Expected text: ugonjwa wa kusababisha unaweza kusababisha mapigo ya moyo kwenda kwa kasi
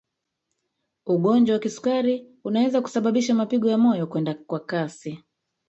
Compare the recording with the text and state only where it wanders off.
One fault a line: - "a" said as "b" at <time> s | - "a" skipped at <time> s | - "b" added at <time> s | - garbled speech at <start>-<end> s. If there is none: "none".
- "kusababisha" said as "kisukari" at 1.6 s